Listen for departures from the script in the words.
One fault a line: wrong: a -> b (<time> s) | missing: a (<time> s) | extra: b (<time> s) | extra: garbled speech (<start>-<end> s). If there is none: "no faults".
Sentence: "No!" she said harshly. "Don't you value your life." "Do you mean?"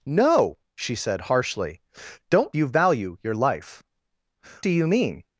no faults